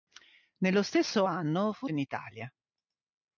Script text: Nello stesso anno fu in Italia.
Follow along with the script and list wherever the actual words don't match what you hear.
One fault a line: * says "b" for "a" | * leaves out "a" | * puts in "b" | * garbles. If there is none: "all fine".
all fine